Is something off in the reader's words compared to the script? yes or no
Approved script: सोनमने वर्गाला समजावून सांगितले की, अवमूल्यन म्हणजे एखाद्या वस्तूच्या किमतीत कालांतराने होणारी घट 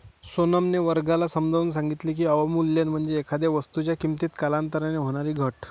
no